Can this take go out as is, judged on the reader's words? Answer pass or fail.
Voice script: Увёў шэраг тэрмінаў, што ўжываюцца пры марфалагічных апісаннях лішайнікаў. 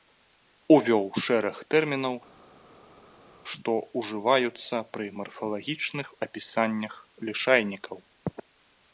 pass